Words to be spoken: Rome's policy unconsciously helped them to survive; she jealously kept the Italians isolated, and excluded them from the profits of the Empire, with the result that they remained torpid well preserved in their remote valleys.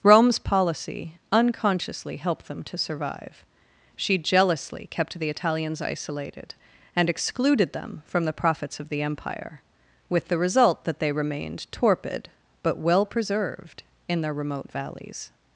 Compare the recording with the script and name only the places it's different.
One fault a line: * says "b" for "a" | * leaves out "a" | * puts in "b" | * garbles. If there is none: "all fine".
* puts in "but"